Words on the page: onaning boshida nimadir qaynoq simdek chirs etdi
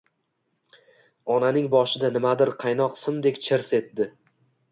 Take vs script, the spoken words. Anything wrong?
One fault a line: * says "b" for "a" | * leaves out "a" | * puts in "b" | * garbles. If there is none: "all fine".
all fine